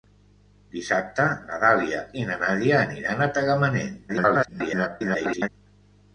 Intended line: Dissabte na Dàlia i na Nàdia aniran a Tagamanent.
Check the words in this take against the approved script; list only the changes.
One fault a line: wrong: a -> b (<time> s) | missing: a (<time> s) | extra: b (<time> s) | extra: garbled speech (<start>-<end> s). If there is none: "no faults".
extra: garbled speech (4.1-5.5 s)